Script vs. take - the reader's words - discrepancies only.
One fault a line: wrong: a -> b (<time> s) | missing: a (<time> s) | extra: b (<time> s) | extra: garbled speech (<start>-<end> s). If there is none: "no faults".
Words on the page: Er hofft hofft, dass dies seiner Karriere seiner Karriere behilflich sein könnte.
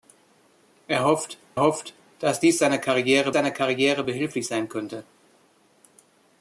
no faults